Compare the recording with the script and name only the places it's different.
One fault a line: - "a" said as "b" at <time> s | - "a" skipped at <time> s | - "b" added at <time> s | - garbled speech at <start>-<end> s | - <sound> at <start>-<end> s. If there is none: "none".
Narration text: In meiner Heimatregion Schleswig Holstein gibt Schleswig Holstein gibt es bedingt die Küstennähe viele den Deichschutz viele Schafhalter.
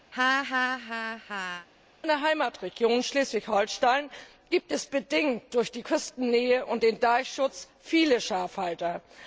- laugh at 0.1-1.7 s
- "Schleswig Holstein gibt" skipped at 4.7 s
- "durch" added at 5.5 s
- "viele" said as "und" at 6.7 s